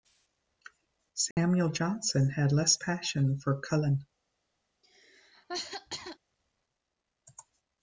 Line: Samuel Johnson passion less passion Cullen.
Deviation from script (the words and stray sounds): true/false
true